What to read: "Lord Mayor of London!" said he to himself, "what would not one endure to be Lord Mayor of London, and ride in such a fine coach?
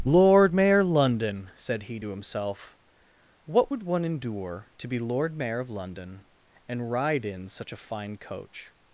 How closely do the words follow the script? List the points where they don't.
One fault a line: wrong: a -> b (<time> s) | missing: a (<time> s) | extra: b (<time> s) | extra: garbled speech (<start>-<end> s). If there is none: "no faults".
missing: of (0.8 s)
missing: not (3.8 s)